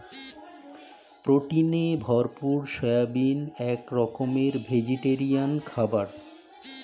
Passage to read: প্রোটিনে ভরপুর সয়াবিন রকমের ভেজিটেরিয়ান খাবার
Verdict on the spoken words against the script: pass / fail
fail